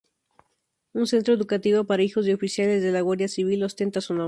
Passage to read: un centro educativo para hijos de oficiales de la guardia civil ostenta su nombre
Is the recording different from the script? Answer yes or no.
no